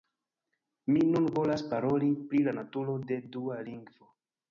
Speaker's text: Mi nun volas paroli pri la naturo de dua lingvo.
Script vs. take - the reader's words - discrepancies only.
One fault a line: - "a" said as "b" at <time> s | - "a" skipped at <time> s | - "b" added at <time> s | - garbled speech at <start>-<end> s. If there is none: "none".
none